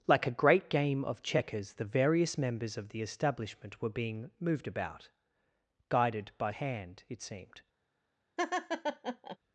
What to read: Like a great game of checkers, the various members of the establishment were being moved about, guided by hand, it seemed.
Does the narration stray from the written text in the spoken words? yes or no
no